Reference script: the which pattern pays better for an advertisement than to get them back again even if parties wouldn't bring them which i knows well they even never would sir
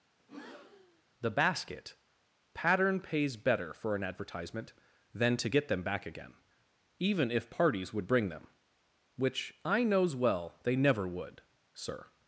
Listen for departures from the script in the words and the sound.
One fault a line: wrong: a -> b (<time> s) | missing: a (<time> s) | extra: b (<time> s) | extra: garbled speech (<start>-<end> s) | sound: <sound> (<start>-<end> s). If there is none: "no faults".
sound: breath (0.2-1.0 s)
wrong: which -> basket (1.3 s)
wrong: wouldn't -> would (7.9 s)
missing: even (10.7 s)